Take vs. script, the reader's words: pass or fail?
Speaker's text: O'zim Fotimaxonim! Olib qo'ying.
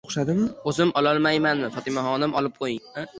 fail